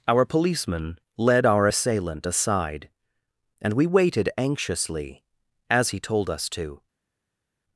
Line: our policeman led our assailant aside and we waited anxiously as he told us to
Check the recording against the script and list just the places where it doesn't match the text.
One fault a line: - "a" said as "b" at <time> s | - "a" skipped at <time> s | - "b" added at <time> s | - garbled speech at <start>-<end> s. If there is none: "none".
none